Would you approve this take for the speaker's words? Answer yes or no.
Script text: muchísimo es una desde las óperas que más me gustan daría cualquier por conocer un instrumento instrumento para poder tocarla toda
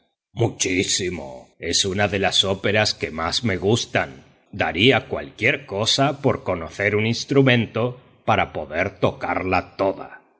no